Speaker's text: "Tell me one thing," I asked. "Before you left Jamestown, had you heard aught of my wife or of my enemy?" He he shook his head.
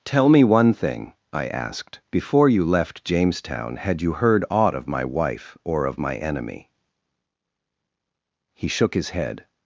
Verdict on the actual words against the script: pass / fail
fail